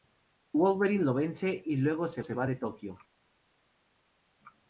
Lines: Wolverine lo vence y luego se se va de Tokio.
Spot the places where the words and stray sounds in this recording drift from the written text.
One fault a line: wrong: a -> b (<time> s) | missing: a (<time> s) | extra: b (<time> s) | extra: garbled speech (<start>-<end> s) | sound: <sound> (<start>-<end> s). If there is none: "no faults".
no faults